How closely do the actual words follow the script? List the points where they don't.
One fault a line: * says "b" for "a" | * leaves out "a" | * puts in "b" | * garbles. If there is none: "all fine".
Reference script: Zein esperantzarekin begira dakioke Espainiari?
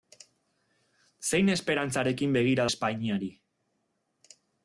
* leaves out "dakioke"